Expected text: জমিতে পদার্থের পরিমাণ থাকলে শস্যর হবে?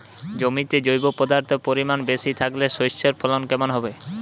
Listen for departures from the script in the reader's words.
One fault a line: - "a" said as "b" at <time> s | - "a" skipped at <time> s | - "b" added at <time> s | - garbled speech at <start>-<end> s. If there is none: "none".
- "জৈব" added at 0.8 s
- "বেশি" added at 2.0 s
- "ফলন কেমন" added at 3.2 s